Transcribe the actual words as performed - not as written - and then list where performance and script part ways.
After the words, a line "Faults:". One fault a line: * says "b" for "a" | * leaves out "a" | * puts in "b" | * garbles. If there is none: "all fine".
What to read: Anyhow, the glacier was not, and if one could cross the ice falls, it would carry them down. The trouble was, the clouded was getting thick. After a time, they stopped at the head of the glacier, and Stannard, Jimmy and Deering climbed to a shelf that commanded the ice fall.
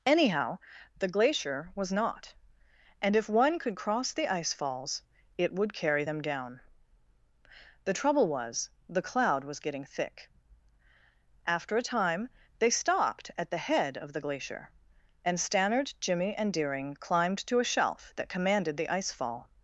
Anyhow, the glacier was not, and if one could cross the ice falls, it would carry them down. The trouble was, the cloud was getting thick. After a time, they stopped at the head of the glacier, and Stannard, Jimmy and Deering climbed to a shelf that commanded the ice fall.
Faults:
* says "cloud" for "clouded"